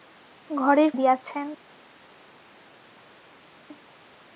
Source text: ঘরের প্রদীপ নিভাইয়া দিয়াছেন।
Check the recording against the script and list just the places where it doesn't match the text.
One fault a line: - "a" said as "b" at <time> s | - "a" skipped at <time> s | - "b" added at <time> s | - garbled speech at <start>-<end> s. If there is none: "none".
- "প্রদীপ নিভাইয়া" skipped at 0.9 s